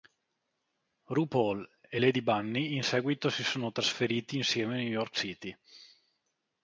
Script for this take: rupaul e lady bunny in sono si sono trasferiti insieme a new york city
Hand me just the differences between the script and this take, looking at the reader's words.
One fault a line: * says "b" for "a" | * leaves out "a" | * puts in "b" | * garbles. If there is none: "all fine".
* says "seguito" for "sono"